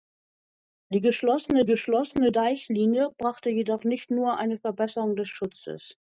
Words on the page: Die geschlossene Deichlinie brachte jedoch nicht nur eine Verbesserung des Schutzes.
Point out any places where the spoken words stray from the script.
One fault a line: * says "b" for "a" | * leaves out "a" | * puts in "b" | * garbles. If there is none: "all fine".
* puts in "geschlossene"